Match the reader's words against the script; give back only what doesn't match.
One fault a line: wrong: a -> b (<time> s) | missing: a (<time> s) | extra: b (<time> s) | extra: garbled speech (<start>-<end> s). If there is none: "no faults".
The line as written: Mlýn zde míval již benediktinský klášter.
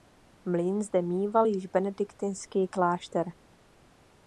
no faults